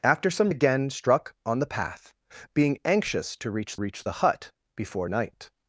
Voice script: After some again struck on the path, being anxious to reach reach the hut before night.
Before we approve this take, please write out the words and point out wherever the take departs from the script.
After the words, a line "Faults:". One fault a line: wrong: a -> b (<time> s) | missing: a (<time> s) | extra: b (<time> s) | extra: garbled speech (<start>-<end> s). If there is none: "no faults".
After some again struck on the path, being anxious to reach reach the hut before night.
Faults:
no faults